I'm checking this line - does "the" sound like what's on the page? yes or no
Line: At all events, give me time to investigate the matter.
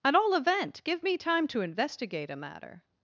no